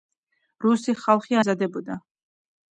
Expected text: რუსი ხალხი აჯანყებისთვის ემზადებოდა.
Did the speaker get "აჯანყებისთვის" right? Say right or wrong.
wrong